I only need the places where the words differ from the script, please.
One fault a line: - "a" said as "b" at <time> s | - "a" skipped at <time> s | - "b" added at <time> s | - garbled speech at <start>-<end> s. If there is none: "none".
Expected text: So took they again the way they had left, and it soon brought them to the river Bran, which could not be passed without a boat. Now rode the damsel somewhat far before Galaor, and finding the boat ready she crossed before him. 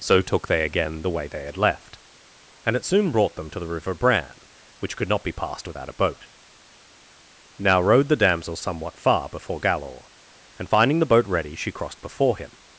none